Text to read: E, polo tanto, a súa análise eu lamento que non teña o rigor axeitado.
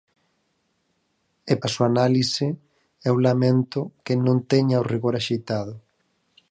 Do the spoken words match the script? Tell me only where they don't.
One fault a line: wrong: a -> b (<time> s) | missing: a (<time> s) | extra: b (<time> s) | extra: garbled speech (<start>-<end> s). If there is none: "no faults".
missing: polo tanto (1.5 s)